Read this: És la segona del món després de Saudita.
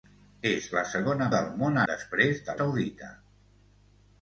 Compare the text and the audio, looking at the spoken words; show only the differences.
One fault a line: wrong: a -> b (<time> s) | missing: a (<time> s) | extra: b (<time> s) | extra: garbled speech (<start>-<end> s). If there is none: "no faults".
no faults